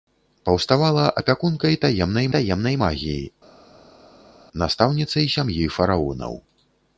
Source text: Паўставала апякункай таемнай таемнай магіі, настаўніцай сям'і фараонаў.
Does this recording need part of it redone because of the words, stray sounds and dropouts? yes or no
no